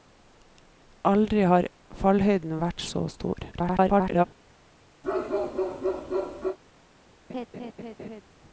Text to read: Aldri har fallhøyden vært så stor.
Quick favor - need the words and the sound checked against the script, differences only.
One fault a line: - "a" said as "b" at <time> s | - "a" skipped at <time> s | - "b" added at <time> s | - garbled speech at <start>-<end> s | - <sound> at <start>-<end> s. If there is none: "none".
- garbled speech at 3.5-4.3 s
- bark at 5.0-6.6 s
- laugh at 7.3-8.2 s